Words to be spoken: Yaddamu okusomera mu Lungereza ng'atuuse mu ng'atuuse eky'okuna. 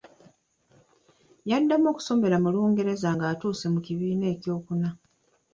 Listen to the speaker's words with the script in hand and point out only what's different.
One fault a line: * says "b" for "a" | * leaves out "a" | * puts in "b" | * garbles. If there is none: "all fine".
* says "kibiina" for "ng'atuuse"